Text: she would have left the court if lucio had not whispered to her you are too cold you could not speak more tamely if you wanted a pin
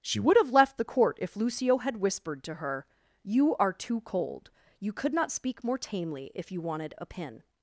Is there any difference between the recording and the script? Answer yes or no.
yes